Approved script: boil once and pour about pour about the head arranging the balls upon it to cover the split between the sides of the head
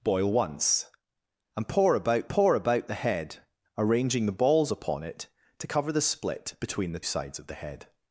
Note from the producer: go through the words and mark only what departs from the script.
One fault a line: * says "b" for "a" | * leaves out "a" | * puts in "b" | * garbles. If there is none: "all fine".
all fine